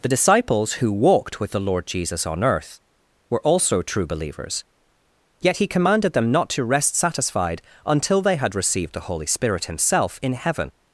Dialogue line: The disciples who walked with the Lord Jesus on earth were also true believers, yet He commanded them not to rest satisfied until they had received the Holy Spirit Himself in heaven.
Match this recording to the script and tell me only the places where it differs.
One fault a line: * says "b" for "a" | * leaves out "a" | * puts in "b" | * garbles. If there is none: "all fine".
all fine